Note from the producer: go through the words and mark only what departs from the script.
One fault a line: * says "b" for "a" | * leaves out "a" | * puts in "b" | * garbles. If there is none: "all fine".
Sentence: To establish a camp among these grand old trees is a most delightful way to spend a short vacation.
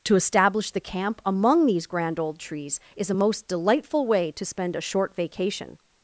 * says "the" for "a"